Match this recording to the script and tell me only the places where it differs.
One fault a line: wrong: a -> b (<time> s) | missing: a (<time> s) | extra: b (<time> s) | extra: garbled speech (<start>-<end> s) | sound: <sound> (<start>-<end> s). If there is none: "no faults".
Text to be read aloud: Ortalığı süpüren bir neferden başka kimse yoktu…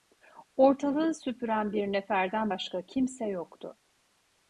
no faults